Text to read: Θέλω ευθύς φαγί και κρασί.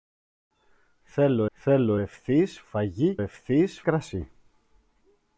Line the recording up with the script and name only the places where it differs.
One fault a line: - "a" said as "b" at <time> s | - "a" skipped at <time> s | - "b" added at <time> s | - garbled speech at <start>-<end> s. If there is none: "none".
- "θέλω" added at 1.5 s
- "και" said as "ευθύς" at 3.2 s